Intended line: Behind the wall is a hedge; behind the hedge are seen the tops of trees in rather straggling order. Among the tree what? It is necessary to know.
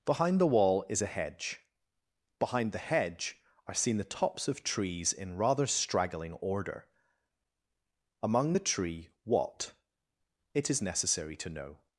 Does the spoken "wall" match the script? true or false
true